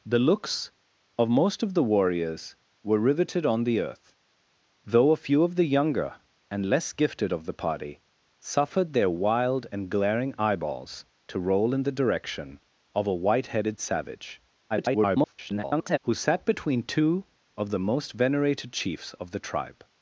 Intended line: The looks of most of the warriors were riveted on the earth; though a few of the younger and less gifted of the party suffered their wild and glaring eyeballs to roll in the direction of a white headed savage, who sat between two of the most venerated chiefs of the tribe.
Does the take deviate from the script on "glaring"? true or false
false